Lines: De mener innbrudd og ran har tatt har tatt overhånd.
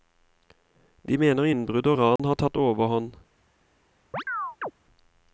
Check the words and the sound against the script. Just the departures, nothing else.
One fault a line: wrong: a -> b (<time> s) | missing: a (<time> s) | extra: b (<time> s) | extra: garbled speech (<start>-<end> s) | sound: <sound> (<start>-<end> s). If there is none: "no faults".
sound: dropout (2.2-2.2 s)
missing: har tatt (2.6 s)
sound: chirp (4.1-4.7 s)